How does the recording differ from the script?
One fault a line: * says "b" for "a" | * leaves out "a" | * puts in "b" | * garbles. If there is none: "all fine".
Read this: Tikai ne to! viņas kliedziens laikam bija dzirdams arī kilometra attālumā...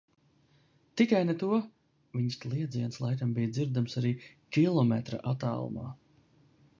all fine